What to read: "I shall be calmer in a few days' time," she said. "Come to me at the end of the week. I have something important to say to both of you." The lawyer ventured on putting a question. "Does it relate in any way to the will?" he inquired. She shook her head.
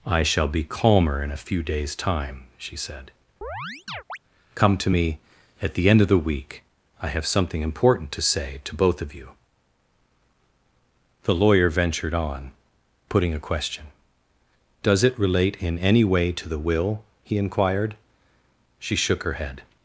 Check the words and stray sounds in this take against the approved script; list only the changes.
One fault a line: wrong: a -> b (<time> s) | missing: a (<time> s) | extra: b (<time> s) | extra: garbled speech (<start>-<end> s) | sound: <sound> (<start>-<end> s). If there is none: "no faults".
sound: chirp (3.4-4.2 s)